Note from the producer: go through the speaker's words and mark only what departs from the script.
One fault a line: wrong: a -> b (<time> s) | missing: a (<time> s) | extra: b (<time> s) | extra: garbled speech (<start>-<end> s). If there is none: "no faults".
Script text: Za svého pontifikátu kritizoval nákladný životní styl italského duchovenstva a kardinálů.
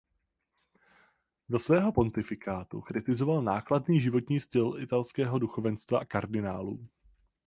no faults